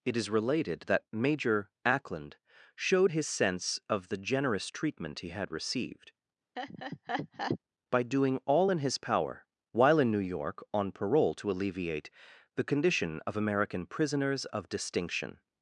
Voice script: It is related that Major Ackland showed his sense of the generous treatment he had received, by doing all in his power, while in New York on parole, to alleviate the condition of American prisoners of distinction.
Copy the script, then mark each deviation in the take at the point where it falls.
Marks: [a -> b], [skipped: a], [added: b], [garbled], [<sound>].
It is related that Major Ackland showed his sense of the generous treatment he had received, [laugh] by doing all in his power, while in New York on parole, to alleviate the condition of American prisoners of distinction.